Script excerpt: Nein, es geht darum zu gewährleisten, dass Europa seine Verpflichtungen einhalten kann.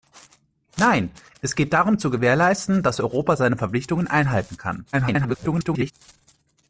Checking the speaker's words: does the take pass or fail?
fail